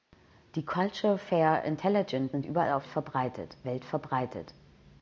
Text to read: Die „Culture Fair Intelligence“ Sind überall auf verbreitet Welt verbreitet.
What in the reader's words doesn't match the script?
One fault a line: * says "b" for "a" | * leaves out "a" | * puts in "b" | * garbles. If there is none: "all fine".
all fine